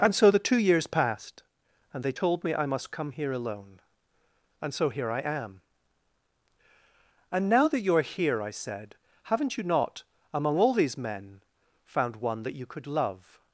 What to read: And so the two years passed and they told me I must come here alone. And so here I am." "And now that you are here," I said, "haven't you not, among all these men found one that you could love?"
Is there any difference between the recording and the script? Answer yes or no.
no